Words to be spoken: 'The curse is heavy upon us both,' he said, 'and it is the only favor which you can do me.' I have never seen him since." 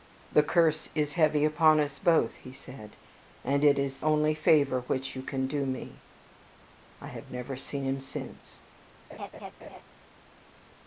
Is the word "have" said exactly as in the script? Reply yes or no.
yes